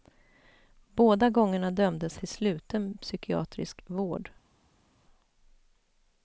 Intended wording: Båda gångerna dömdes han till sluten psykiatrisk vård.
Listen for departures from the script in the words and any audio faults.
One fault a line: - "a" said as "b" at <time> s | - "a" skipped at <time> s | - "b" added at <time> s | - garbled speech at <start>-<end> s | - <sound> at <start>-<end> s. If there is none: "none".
- "han" skipped at 2.2 s